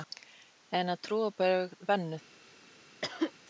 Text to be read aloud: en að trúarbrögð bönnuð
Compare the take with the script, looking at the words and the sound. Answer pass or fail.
fail